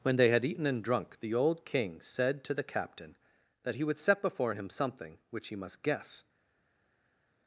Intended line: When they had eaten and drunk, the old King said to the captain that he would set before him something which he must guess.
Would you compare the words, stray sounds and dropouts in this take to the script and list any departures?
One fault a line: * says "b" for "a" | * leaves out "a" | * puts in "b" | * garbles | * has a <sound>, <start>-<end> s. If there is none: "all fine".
all fine